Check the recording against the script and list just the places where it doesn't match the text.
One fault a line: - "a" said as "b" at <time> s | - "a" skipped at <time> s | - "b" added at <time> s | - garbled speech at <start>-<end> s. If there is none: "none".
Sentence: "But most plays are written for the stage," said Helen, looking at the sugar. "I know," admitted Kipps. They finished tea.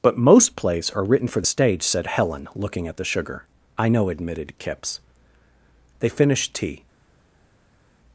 none